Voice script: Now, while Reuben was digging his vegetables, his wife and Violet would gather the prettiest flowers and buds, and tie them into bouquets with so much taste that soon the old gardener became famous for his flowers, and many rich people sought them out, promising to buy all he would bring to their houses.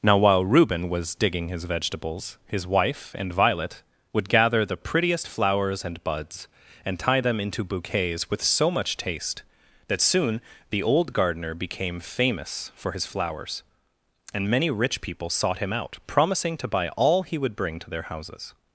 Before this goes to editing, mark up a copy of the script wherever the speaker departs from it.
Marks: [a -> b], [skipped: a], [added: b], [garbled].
Now, while Reuben was digging his vegetables, his wife and Violet would gather the prettiest flowers and buds, and tie them into bouquets with so much taste that soon the old gardener became famous for his flowers, and many rich people sought [them -> him] out, promising to buy all he would bring to their houses.